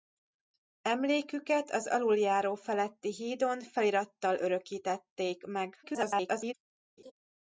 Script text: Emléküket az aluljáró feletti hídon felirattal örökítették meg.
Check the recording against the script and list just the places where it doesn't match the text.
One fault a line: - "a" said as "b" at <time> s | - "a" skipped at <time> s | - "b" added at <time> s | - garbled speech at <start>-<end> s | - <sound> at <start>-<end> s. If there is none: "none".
- garbled speech at 5.8-6.5 s
- laugh at 7.0-7.1 s